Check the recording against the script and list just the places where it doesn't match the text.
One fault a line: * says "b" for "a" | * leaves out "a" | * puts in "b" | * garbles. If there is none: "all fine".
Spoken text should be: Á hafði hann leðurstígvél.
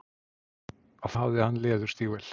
all fine